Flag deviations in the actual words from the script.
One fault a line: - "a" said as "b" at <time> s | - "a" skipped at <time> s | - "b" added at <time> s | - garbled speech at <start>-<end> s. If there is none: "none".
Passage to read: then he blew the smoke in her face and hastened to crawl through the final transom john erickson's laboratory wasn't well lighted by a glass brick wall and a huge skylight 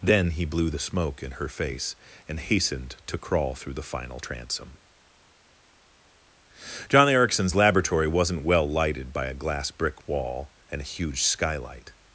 none